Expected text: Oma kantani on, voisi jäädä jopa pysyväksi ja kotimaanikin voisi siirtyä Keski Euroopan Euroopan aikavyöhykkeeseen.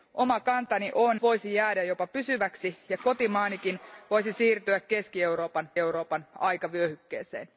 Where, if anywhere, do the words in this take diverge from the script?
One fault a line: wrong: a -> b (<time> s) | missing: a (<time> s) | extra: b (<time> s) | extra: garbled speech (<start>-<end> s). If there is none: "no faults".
no faults